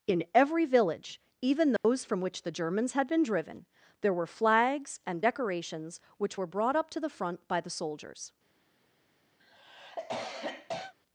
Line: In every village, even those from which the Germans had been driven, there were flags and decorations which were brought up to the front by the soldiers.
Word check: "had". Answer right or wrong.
right